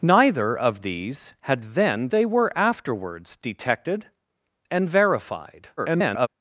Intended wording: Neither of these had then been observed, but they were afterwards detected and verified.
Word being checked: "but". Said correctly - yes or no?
no